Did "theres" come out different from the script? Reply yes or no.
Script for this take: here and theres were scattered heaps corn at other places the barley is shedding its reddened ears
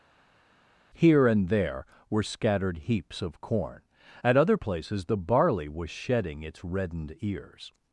yes